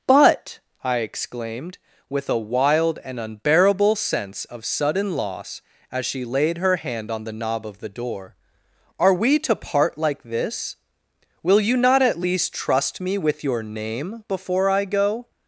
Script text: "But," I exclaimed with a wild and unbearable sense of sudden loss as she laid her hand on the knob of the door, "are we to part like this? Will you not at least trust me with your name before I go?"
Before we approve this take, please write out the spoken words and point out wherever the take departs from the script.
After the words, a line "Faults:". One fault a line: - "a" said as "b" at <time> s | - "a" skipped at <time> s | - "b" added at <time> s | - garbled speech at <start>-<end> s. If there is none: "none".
"But," I exclaimed with a wild and unbearable sense of sudden loss as she laid her hand on the knob of the door, "are we to part like this? Will you not at least trust me with your name before I go?"
Faults:
none